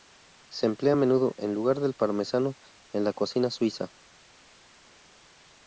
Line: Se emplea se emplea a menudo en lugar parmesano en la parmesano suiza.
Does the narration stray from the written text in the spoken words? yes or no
yes